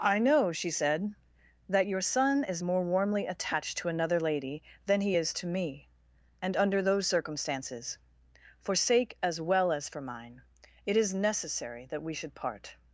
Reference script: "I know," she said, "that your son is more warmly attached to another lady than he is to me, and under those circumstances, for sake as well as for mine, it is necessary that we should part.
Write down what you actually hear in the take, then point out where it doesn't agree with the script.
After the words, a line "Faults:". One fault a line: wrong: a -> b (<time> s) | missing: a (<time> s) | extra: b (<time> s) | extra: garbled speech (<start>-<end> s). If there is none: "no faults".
"I know," she said, "that your son is more warmly attached to another lady than he is to me, and under those circumstances, for sake as well as for mine, it is necessary that we should part.
Faults:
no faults